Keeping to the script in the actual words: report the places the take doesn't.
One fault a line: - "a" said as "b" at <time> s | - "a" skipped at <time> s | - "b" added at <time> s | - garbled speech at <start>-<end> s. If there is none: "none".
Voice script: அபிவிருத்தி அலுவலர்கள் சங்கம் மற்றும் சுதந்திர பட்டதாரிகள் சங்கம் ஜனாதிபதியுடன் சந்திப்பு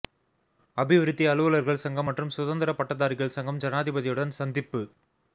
none